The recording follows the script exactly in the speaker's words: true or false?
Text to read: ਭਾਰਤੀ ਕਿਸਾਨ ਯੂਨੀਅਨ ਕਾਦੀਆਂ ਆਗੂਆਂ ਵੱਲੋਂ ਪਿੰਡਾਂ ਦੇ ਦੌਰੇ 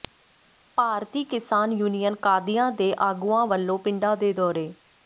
false